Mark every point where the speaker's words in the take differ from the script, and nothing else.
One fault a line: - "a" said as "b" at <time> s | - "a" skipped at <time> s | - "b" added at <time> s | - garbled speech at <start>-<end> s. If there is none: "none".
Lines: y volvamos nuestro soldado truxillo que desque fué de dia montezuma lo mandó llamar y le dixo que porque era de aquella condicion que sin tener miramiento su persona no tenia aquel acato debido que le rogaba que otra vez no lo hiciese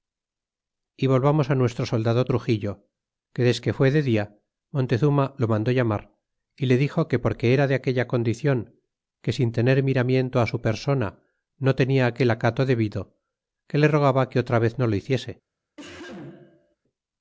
none